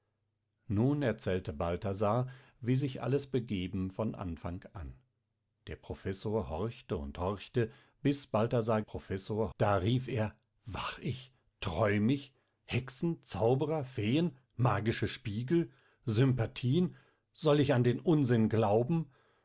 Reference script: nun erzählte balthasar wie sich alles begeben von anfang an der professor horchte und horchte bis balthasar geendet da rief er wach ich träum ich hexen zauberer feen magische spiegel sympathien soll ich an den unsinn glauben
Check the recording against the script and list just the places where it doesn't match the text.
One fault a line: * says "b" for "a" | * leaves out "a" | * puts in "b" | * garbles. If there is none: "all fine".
* says "professor" for "geendet"